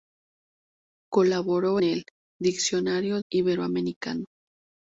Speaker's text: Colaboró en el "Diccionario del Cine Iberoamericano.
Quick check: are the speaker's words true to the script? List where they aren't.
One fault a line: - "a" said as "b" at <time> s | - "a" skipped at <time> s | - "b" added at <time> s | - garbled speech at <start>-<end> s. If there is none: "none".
- "en" skipped at 1.8 s
- "del Cine" skipped at 3.2 s